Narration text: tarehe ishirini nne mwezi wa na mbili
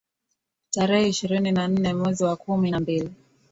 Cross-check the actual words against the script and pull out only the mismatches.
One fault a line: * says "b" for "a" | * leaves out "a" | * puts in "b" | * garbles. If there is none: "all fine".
* puts in "na"
* puts in "kumi"